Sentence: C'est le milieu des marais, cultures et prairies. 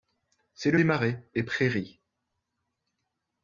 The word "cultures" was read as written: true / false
false